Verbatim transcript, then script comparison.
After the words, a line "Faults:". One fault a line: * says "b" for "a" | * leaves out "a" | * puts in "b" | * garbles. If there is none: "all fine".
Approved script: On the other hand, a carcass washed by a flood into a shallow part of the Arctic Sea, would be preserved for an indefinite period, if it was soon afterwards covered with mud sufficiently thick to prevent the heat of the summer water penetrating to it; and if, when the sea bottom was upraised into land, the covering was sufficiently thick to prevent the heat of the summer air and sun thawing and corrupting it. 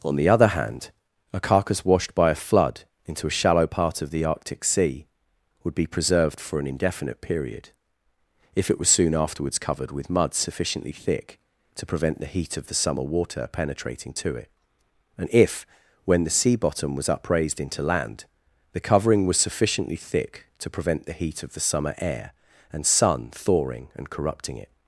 On the other hand, a carcass washed by a flood into a shallow part of the Arctic Sea, would be preserved for an indefinite period, if it was soon afterwards covered with mud sufficiently thick to prevent the heat of the summer water penetrating to it; and if, when the sea bottom was upraised into land, the covering was sufficiently thick to prevent the heat of the summer air and sun thawing and corrupting it.
Faults:
all fine